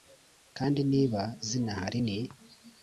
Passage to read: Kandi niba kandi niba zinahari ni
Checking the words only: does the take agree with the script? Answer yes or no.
no